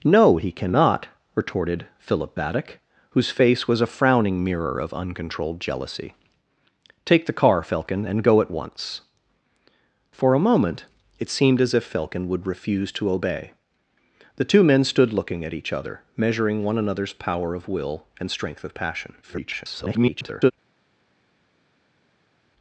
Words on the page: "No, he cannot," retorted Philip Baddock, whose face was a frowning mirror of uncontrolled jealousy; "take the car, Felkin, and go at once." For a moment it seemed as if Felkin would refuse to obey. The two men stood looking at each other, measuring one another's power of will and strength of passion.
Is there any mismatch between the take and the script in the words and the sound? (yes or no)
yes